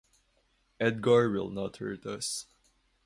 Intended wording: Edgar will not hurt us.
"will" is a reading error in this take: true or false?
false